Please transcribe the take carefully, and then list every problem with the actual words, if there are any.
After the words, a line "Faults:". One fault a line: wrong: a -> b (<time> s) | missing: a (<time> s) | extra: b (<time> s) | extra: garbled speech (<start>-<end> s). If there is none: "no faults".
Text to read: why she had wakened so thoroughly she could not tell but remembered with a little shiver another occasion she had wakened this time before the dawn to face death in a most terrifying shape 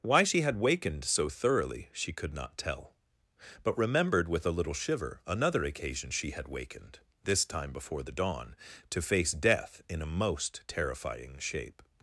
why she had wakened so thoroughly she could not tell but remembered with a little shiver another occasion she had wakened this time before the dawn to face death in a most terrifying shape
Faults:
no faults